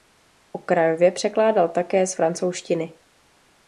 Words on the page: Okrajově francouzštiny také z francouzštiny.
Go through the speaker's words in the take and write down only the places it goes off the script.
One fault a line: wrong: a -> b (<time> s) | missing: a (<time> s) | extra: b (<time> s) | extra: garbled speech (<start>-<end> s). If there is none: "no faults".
wrong: francouzštiny -> překládal (1.1 s)